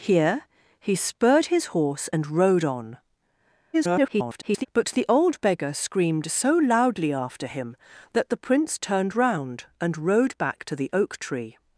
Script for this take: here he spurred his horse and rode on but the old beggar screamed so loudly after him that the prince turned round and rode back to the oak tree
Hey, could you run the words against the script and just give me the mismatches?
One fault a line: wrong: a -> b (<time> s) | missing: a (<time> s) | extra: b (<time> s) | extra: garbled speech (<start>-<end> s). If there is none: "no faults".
extra: garbled speech (3.7-4.7 s)